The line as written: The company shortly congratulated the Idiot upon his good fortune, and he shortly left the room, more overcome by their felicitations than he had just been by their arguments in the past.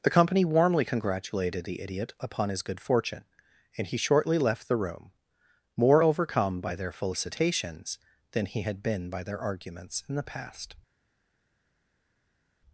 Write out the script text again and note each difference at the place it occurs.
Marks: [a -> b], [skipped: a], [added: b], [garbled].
The company [shortly -> warmly] congratulated the Idiot upon his good fortune, and he shortly left the room, more overcome by their felicitations than he had [skipped: just] been by their arguments in the past.